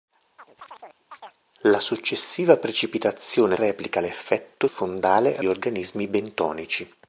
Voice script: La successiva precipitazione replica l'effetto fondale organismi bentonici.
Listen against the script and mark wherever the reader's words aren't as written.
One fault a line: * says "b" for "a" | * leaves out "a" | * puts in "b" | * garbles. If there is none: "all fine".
all fine